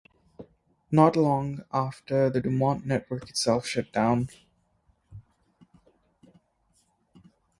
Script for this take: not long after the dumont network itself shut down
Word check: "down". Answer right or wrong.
right